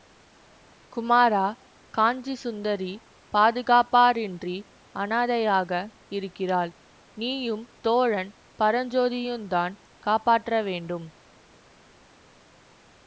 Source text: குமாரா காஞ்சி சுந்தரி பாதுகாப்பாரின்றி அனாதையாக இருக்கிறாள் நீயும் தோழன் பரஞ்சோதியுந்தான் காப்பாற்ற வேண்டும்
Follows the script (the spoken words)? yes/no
yes